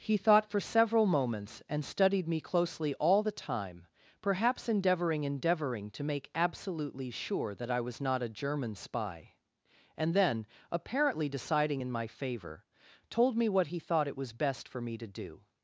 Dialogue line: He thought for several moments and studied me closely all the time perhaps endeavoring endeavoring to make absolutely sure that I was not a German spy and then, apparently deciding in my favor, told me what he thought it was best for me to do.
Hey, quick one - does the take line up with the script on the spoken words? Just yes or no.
yes